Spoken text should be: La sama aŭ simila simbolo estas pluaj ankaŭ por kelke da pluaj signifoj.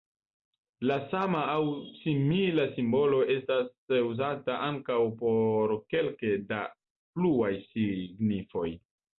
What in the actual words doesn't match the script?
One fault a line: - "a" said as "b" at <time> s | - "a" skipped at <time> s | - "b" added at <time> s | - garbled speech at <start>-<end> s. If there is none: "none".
- "pluaj" said as "uzata" at 4.1 s